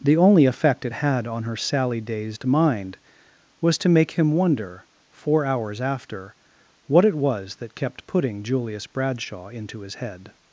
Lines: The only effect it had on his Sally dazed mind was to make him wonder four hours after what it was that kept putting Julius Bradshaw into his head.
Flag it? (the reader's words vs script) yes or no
yes